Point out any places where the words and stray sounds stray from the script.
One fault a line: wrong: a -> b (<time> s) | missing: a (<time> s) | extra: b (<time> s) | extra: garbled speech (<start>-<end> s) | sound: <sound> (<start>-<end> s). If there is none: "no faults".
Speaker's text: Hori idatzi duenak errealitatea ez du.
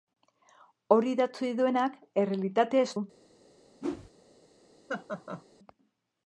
sound: whoosh (3.8-4.1 s)
sound: laugh (4.9-5.4 s)